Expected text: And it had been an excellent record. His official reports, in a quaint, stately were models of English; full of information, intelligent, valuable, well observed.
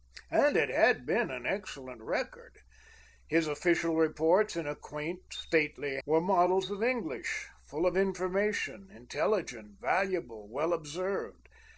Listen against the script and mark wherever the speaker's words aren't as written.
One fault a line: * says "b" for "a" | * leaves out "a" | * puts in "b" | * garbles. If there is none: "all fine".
all fine